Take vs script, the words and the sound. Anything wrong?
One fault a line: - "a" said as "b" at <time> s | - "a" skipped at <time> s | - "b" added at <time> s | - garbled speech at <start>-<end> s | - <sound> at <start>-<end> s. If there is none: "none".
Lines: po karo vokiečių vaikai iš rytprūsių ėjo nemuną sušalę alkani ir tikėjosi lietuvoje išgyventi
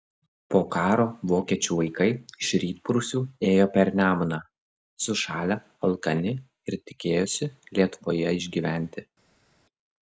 - "per" added at 3.8 s